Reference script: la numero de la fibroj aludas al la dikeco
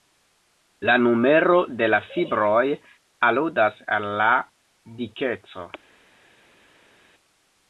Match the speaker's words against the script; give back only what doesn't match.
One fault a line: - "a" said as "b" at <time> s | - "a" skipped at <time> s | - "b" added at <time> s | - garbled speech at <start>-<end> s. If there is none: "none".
none